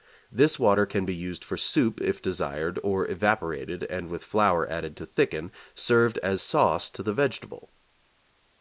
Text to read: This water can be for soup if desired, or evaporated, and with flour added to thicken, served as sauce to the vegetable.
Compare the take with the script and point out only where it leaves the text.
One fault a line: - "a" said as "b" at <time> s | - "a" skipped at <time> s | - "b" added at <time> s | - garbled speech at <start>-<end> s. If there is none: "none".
- "used" added at 1.1 s